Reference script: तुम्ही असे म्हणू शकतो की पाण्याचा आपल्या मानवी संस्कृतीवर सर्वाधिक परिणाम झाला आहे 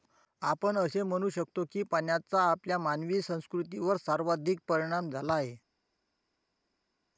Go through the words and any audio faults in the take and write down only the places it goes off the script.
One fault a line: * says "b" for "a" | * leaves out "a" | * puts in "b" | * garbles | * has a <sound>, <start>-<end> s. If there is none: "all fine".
* says "आपण" for "तुम्ही"